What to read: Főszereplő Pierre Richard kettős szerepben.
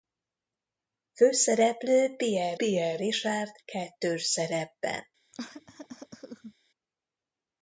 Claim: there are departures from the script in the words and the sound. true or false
true